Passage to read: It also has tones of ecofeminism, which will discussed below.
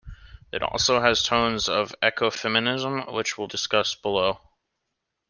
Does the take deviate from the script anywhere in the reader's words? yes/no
no